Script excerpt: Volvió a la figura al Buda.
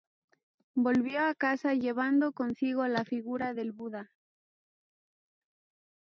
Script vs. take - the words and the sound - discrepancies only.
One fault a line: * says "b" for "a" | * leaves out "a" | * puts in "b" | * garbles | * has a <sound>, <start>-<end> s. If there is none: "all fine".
* puts in "casa llevando consigo"
* says "del" for "al"